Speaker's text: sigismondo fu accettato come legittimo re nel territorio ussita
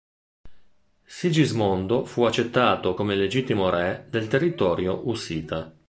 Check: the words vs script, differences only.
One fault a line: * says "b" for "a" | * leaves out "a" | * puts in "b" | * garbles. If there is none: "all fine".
* says "del" for "nel"